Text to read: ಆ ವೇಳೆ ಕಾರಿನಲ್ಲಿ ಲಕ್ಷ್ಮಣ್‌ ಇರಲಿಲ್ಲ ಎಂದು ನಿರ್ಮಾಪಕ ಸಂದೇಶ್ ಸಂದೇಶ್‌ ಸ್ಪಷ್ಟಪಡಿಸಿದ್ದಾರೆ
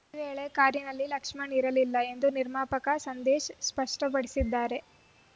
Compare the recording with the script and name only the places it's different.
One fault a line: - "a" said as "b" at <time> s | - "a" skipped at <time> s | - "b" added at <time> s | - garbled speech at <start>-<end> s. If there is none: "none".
- "ಆ" said as "ಈ" at 0.1 s
- "ಸಂದೇಶ್" skipped at 3.5 s